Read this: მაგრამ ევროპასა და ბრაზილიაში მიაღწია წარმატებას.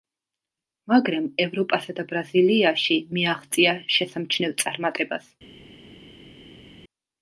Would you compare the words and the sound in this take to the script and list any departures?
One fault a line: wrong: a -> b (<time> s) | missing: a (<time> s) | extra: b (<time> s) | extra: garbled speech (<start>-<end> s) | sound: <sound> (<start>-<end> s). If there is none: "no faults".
extra: შესამჩნევ (4.0 s)